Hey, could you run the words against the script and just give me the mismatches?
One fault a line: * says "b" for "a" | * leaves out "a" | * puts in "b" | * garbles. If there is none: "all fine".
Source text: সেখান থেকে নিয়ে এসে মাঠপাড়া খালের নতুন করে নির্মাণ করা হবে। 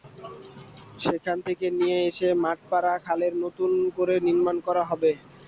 all fine